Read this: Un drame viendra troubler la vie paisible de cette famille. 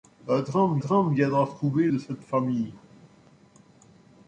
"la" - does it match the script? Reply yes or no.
no